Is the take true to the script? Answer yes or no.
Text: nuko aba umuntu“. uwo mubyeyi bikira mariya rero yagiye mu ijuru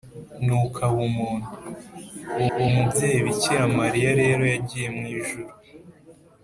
no